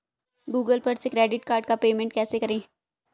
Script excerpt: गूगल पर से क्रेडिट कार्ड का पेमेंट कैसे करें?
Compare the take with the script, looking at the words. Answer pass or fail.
pass